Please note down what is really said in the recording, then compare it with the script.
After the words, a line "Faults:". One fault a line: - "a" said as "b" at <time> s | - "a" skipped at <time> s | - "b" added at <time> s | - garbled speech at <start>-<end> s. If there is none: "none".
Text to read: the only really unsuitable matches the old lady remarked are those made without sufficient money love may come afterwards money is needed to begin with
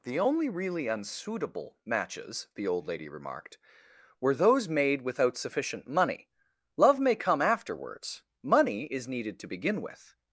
the only really unsuitable matches the old lady remarked were those made without sufficient money love may come afterwards money is needed to begin with
Faults:
- "are" said as "were" at 4.2 s